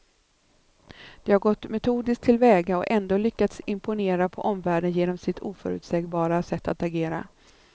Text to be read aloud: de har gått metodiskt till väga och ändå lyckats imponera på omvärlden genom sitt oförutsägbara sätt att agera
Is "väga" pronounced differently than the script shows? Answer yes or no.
no